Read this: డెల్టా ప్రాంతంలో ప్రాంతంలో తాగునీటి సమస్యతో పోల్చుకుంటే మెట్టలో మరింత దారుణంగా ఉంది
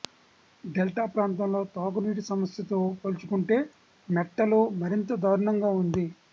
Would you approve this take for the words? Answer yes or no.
no